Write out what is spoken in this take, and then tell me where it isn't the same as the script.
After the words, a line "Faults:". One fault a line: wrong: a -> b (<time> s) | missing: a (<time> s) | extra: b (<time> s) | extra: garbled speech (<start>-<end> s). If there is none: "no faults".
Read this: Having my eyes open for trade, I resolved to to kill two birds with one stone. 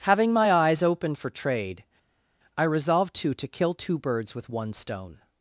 Having my eyes open for trade, I resolved to to kill two birds with one stone.
Faults:
no faults